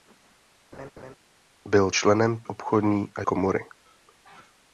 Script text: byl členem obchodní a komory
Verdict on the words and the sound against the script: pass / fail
fail